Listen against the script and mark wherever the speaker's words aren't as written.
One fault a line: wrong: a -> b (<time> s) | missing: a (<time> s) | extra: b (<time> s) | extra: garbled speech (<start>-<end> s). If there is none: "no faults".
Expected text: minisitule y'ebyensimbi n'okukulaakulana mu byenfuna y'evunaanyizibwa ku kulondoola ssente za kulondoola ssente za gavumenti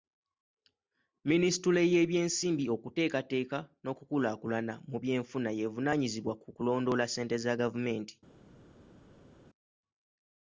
extra: okuteekateeka (2.8 s)
missing: kulondoola ssente za (7.5 s)